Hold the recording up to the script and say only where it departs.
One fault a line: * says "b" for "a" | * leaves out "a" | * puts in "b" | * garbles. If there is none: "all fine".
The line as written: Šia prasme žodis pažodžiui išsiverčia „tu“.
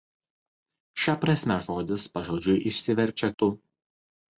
all fine